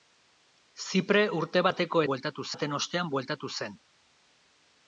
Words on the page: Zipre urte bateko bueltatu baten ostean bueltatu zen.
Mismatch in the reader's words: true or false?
false